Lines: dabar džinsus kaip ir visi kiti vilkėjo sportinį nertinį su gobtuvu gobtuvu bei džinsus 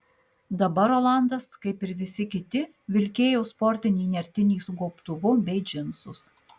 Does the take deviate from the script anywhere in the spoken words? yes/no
yes